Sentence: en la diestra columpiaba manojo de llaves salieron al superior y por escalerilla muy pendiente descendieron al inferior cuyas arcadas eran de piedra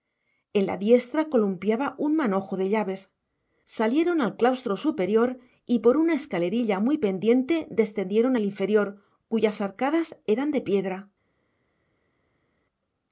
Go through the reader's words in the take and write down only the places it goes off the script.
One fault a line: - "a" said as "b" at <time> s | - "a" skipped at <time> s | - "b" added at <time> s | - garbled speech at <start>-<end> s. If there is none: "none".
- "un" added at 2.0 s
- "claustro" added at 4.3 s
- "una" added at 6.0 s